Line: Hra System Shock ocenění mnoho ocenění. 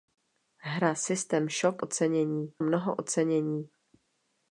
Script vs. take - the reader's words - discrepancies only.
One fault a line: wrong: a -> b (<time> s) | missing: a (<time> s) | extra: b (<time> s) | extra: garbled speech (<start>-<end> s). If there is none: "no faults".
no faults